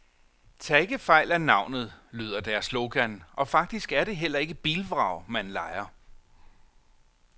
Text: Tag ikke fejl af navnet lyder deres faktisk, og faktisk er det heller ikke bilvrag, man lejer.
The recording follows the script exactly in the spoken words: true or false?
false